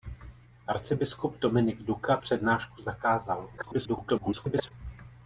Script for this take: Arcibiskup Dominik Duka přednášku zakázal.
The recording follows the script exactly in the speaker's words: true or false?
false